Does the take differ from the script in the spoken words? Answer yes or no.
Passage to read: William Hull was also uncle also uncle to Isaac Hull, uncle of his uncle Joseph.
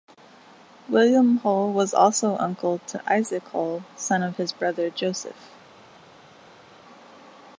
yes